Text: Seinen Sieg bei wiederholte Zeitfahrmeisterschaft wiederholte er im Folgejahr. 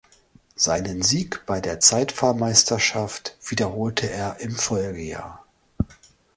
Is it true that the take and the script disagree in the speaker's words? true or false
true